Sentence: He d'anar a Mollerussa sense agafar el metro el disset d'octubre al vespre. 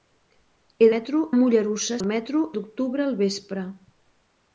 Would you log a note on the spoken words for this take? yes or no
yes